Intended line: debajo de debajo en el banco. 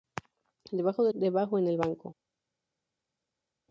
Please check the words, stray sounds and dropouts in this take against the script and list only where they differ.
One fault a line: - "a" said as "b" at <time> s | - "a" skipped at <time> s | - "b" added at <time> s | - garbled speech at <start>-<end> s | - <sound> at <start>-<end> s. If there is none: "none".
none